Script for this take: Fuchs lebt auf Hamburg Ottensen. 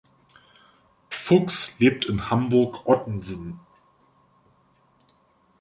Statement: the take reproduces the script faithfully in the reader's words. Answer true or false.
false